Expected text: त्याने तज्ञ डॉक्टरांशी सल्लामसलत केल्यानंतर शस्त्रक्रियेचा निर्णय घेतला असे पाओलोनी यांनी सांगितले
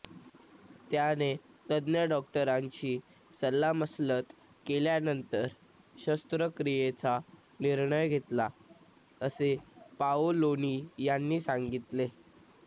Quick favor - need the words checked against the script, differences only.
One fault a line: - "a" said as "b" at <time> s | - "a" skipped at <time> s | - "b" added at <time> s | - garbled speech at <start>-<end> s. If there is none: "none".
none